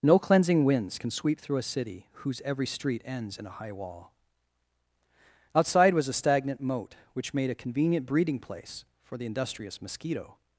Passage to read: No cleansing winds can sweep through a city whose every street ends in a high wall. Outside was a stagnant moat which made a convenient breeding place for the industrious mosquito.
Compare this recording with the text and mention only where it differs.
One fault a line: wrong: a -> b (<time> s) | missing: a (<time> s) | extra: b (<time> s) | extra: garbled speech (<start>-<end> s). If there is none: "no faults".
no faults